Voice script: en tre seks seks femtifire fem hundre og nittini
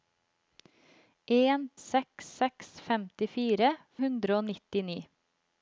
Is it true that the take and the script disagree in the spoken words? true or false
true